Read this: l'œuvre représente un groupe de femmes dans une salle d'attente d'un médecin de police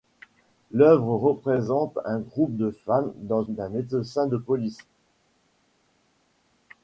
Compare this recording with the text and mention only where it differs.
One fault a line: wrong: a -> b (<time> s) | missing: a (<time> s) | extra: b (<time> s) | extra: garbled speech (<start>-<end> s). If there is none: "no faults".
missing: une salle d'attente (3.4 s)